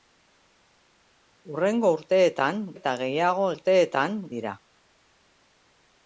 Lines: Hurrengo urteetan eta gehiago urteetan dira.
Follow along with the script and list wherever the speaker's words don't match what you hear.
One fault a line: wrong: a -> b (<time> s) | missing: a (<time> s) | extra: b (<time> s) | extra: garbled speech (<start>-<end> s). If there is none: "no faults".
no faults